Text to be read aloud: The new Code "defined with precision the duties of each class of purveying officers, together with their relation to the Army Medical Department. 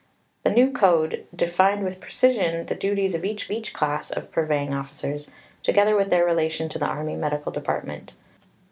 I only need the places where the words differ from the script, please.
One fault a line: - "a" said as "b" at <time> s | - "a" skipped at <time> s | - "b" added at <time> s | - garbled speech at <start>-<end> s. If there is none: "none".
- "each" added at 3.5 s